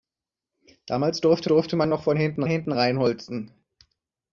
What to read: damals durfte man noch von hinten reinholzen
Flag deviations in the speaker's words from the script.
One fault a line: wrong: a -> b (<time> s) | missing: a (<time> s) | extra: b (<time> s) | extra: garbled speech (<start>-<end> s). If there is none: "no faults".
extra: durfte (1.5 s)
extra: hinten (2.5 s)